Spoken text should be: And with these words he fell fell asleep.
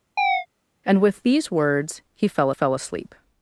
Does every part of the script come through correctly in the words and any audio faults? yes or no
no